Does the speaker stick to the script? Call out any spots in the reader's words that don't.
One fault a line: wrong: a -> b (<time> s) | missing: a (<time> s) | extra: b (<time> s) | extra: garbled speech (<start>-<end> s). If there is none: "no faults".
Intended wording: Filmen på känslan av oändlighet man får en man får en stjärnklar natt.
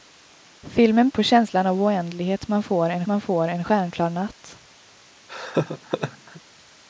no faults